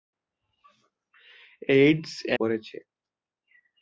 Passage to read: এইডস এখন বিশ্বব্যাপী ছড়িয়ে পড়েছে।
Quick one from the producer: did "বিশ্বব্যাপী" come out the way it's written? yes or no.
no